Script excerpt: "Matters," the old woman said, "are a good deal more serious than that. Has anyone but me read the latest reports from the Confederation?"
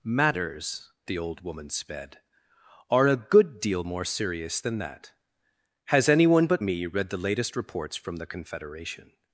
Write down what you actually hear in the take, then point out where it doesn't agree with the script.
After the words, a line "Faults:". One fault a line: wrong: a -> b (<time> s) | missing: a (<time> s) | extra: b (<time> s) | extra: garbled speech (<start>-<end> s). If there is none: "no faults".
"Matters," the old woman sped, "are a good deal more serious than that. Has anyone but me read the latest reports from the Confederation?"
Faults:
wrong: said -> sped (1.7 s)